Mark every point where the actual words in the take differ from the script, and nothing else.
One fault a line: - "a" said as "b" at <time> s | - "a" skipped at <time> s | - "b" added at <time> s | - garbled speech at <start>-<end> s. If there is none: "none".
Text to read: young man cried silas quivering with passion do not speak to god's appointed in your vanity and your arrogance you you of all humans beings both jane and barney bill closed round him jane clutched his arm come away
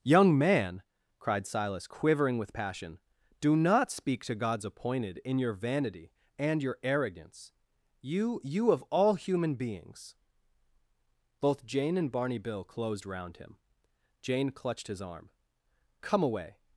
- "humans" said as "human" at 9.1 s